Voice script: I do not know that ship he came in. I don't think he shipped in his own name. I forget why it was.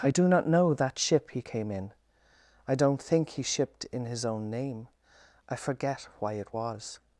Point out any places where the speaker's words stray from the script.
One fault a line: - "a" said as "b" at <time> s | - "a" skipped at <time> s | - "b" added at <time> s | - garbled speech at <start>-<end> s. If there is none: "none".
none